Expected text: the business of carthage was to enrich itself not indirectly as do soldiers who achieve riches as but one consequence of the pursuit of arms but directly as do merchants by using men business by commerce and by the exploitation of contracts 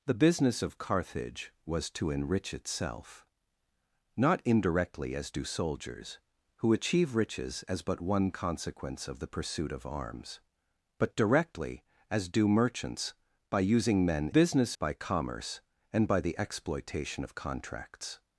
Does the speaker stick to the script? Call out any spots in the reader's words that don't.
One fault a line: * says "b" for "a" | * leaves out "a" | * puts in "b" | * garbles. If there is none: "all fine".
all fine